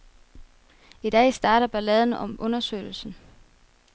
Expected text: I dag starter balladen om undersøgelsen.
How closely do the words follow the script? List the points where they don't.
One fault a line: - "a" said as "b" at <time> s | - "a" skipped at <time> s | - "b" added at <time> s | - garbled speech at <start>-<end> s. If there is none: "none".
none